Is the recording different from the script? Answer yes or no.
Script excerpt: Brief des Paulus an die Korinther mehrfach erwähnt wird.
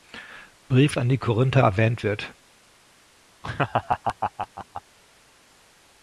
yes